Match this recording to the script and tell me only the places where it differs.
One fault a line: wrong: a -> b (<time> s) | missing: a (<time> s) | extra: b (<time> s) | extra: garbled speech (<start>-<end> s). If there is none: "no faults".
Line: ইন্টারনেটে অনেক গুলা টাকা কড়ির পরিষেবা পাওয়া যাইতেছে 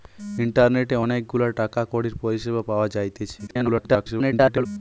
extra: garbled speech (3.5-4.7 s)